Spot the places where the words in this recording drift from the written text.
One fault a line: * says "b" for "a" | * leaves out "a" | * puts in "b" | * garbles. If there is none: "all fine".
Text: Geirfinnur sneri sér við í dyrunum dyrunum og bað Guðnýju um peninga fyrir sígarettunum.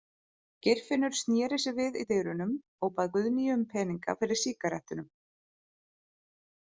* leaves out "dyrunum"